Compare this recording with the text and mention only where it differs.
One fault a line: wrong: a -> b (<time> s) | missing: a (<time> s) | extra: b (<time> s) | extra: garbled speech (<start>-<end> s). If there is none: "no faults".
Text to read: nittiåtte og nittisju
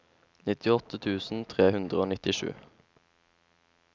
extra: tusen tre hundre (1.1 s)